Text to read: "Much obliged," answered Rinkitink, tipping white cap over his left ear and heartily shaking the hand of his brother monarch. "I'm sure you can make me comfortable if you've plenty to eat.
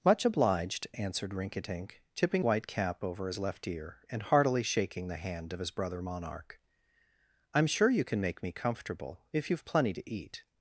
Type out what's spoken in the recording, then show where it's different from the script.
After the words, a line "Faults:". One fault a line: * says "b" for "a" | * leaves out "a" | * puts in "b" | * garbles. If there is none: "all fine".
"Much obliged," answered Rinkitink, tipping white cap over his left ear and heartily shaking the hand of his brother monarch. "I'm sure you can make me comfortable if you've plenty to eat.
Faults:
all fine